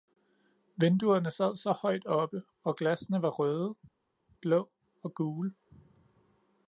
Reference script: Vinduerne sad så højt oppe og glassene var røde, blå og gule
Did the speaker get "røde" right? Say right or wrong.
right